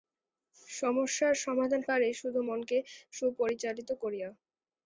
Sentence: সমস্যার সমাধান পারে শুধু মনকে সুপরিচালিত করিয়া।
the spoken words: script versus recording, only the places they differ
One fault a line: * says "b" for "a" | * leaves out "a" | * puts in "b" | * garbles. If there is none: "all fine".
all fine